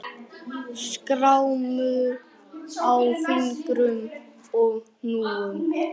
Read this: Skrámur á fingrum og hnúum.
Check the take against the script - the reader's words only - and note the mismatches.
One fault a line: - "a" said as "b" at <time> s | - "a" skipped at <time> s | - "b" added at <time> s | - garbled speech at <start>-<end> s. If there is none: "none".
none